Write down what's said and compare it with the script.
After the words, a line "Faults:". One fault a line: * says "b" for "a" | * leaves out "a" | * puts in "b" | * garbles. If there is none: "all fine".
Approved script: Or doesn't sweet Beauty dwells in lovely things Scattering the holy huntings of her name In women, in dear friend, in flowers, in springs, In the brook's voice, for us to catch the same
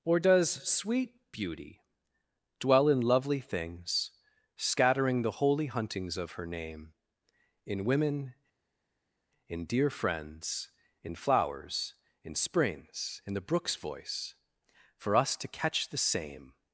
Or does sweet Beauty dwell in lovely things Scattering the holy huntings of her name In women, in dear friends, in flowers, in springs, In the brook's voice, for us to catch the same
Faults:
* says "does" for "doesn't"
* says "dwell" for "dwells"
* says "friends" for "friend"